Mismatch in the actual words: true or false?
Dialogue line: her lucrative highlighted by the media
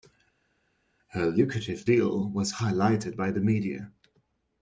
true